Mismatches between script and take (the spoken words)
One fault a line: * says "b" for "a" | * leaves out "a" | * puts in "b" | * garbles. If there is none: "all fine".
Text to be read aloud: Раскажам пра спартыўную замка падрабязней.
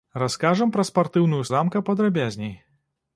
all fine